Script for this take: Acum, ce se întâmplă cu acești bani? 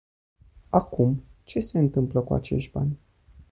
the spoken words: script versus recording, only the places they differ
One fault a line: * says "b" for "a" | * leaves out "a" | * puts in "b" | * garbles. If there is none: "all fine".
all fine